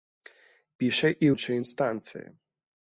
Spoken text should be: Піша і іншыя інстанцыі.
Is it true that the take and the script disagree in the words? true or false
false